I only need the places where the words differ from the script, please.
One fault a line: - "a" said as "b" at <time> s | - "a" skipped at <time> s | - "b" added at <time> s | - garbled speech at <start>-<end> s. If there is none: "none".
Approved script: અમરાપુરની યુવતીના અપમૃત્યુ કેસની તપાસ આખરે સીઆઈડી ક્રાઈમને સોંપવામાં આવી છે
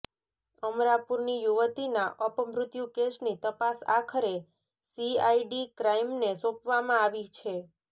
none